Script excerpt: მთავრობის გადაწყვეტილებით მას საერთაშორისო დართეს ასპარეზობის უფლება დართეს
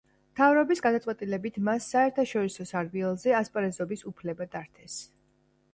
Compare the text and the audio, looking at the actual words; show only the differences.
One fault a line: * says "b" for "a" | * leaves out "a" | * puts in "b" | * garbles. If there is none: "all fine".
* says "სარბიელზე" for "დართეს"